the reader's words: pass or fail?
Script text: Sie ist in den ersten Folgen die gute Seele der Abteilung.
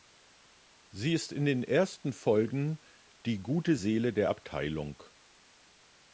pass